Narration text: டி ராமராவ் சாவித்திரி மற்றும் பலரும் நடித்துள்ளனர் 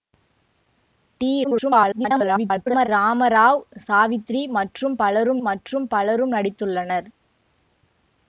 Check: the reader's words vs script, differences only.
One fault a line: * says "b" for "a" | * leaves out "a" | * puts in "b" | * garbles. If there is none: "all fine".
* garbles
* puts in "மற்றும் பலரும்"